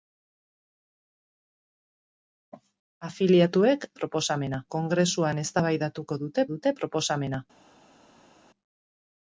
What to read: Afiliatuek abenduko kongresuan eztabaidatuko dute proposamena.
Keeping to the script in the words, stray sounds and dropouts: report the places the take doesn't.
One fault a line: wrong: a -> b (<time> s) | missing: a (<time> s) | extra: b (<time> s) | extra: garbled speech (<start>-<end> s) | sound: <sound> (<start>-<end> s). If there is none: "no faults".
wrong: abenduko -> proposamena (4.0 s)
extra: dute (6.5 s)